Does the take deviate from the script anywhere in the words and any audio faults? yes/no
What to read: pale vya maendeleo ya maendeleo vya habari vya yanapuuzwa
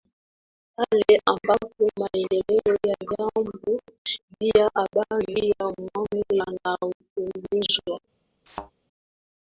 yes